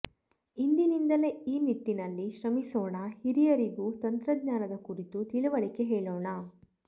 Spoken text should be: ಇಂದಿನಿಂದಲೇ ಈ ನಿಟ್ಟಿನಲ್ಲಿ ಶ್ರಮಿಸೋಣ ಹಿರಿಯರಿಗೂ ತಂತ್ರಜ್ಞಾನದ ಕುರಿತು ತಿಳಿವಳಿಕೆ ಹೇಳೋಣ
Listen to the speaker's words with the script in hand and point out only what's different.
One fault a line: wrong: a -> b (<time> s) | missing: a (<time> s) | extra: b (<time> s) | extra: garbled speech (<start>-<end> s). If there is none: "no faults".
no faults